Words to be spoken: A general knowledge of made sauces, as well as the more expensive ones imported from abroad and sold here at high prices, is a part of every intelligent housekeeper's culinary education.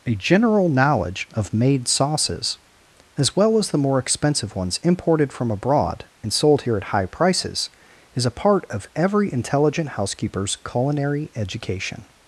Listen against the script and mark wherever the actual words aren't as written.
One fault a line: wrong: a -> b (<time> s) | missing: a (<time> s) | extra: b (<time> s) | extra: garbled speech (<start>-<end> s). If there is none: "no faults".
no faults